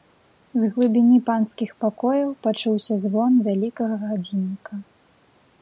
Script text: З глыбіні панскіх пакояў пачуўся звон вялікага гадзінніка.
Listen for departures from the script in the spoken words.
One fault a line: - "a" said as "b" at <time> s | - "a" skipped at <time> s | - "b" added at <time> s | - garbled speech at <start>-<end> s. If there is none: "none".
none